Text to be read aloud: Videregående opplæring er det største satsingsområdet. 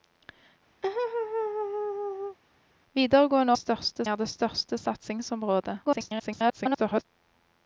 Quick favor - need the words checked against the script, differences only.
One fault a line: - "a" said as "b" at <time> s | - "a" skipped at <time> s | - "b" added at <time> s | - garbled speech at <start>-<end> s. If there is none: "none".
- "opplæring" said as "største" at 3.5 s
- garbled speech at 5.8-7.1 s